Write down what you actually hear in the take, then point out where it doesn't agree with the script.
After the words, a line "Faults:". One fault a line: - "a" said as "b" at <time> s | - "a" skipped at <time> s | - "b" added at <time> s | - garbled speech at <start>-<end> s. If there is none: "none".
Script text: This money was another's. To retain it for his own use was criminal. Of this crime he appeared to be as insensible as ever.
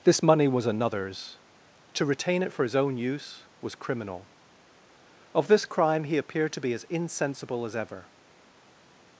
This money was another's. To retain it for his own use was criminal. Of this crime he appeared to be as insensible as ever.
Faults:
none